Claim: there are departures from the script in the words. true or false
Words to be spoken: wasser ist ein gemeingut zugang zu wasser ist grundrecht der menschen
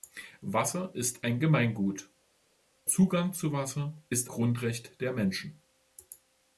false